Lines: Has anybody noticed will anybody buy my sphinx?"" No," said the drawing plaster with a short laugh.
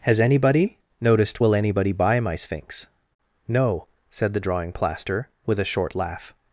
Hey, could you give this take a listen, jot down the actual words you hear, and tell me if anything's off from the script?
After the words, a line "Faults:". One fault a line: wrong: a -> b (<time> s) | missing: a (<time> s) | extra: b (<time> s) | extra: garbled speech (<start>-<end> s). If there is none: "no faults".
Has anybody noticed will anybody buy my sphinx?"" No," said the drawing plaster with a short laugh.
Faults:
no faults